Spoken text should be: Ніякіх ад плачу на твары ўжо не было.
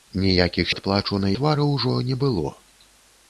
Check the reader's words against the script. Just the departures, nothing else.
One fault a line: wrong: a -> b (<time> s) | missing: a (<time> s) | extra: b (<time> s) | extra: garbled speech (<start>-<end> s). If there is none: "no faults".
no faults